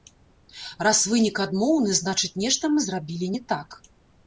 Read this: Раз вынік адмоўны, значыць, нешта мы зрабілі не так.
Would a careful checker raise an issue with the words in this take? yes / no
no